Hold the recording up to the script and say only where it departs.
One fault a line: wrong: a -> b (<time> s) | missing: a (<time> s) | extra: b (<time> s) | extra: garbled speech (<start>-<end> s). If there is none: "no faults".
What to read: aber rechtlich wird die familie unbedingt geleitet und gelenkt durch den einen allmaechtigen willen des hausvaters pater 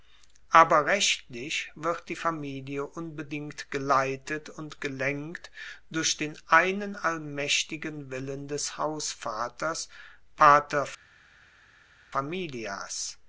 no faults